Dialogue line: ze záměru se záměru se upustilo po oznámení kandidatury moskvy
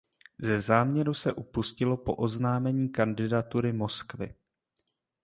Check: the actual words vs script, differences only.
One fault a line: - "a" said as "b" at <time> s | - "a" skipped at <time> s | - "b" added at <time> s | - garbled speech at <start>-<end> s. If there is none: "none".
- "záměru se" skipped at 1.3 s